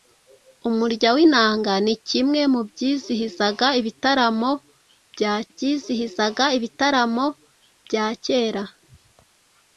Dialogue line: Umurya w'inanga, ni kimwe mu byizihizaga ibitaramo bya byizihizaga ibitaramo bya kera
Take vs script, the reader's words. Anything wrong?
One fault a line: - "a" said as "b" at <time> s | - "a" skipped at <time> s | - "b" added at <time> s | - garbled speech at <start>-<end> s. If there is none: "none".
none